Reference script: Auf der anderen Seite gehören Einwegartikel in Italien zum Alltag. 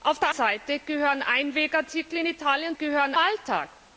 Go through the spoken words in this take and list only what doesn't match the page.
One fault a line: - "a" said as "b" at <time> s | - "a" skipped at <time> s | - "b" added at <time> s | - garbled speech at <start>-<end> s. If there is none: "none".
- "anderen" skipped at 0.3 s
- "zum" said as "gehören" at 2.7 s